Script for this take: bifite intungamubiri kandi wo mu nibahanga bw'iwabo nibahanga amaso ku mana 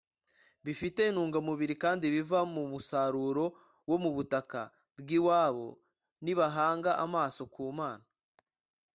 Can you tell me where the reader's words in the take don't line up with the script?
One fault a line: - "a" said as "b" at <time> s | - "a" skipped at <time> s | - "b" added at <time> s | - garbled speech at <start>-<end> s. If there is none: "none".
- "biva mu musaruro" added at 2.1 s
- "nibahanga" said as "butaka" at 4.2 s